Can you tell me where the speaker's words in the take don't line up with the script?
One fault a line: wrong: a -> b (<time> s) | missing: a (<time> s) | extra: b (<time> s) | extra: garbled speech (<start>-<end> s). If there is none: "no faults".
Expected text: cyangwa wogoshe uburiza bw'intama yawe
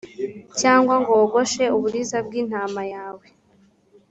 extra: ngo (1.0 s)